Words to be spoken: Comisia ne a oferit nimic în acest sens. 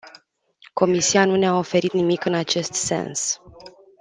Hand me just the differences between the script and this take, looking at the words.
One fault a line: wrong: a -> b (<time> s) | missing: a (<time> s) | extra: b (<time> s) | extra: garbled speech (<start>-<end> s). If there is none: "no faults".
extra: nu (1.2 s)